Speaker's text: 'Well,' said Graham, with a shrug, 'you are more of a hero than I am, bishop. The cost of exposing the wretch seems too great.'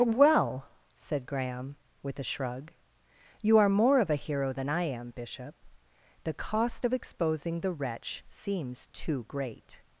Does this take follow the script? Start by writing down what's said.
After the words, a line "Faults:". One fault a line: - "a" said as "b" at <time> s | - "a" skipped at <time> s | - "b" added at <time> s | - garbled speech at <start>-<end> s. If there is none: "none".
'Well,' said Graham, with a shrug, 'you are more of a hero than I am, bishop. The cost of exposing the wretch seems too great.'
Faults:
none